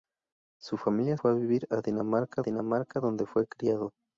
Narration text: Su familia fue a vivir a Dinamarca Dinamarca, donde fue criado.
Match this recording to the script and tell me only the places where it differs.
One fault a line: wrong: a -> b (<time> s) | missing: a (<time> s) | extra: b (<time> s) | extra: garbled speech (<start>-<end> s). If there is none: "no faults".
no faults